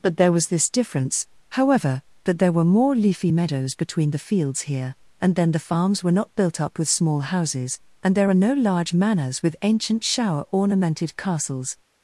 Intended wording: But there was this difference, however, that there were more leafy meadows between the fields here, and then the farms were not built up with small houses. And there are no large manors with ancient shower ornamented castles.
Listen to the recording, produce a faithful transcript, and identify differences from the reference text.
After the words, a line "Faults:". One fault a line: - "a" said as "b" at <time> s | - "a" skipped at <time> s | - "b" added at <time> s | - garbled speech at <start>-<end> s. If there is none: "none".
But there was this difference, however, that there were more leafy meadows between the fields here, and then the farms were not built up with small houses. And there are no large manors with ancient shower ornamented castles.
Faults:
none